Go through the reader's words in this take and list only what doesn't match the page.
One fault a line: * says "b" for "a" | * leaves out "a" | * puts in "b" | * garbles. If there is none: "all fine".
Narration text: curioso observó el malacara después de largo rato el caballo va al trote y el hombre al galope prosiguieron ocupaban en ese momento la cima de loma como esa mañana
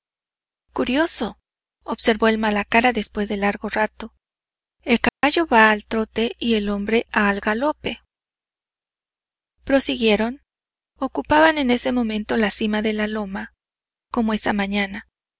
* puts in "la"